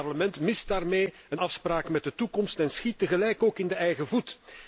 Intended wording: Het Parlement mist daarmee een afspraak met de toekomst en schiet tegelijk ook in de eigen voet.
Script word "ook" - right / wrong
right